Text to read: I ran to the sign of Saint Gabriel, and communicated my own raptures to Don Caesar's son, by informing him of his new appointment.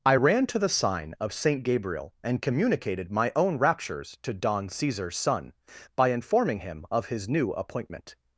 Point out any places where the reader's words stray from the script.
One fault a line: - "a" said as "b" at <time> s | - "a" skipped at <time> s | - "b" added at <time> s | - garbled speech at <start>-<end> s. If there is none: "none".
none